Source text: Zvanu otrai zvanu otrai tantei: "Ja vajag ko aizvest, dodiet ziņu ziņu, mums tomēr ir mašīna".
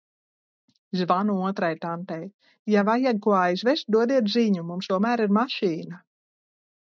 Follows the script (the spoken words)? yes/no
no